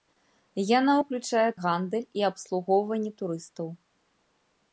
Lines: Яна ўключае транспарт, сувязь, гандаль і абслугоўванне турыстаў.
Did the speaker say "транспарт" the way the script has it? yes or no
no